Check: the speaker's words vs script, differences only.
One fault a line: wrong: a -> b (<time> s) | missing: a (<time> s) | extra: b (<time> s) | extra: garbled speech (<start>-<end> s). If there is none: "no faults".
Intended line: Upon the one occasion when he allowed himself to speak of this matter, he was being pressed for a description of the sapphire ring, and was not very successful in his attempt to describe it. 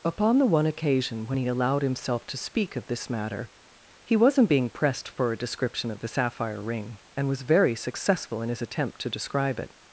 wrong: was -> wasn't (4.1 s)
missing: not (7.4 s)